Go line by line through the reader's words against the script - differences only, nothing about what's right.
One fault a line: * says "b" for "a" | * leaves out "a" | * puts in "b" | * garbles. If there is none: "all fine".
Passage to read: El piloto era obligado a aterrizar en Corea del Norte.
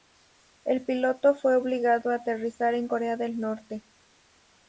* says "fue" for "era"